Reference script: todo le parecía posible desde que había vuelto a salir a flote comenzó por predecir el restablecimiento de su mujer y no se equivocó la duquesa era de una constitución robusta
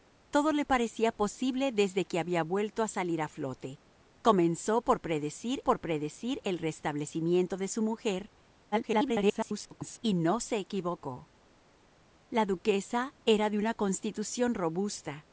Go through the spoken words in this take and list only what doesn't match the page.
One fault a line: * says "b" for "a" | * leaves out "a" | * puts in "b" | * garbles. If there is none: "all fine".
* puts in "por predecir"
* garbles